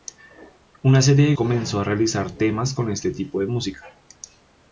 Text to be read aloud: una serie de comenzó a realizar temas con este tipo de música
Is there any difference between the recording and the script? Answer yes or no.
no